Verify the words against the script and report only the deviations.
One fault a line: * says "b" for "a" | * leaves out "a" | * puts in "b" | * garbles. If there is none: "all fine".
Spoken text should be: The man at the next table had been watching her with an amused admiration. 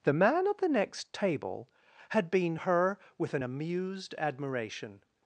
* leaves out "watching"